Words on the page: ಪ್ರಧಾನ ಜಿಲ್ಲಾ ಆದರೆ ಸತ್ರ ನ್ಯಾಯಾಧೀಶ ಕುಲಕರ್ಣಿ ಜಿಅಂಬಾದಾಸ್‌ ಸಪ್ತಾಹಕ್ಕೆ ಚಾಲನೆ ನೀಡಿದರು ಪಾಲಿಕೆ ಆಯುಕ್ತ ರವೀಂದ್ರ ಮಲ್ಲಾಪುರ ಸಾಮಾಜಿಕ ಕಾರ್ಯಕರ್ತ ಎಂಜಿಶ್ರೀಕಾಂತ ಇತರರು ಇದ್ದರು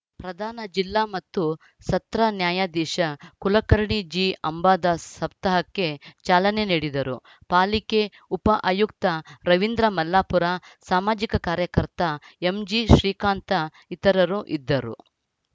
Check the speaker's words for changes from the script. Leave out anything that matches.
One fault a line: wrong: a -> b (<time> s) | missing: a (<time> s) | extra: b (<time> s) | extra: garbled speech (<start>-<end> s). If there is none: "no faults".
wrong: ಆದರೆ -> ಮತ್ತು (1.1 s)
extra: ಉಪ (8.3 s)